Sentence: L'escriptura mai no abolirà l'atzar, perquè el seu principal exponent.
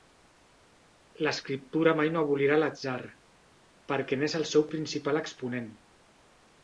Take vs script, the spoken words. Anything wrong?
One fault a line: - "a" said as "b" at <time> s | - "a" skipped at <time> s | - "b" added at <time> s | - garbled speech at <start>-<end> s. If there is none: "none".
- "n'és" added at 4.2 s